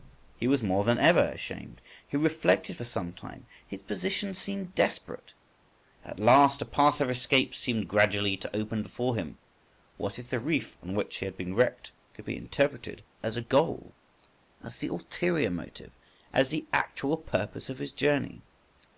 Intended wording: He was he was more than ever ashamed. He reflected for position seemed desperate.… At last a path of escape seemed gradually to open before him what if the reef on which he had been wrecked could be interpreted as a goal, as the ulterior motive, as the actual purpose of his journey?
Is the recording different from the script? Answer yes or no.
yes